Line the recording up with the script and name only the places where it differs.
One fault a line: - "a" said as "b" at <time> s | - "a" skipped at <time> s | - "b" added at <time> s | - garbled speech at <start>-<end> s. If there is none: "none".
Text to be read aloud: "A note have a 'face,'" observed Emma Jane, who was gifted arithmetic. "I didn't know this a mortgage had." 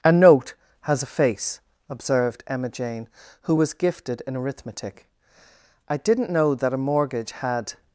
- "have" said as "has" at 0.8 s
- "in" added at 4.3 s
- "this" said as "that" at 6.5 s